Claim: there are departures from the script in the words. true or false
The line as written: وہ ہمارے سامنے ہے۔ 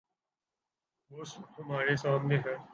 false